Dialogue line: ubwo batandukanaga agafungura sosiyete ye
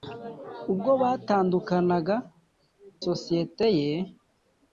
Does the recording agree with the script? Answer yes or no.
no